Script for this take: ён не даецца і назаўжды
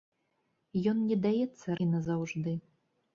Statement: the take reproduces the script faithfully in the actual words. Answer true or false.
true